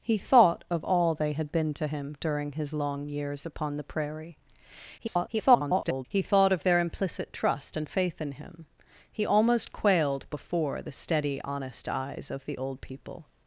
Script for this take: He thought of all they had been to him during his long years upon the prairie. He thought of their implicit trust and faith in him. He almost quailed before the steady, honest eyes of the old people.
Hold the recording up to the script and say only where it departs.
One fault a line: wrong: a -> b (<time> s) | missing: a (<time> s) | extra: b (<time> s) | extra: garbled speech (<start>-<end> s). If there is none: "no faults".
extra: garbled speech (5.0-6.1 s)